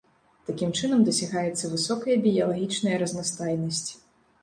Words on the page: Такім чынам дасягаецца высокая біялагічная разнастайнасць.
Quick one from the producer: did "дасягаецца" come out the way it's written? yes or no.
yes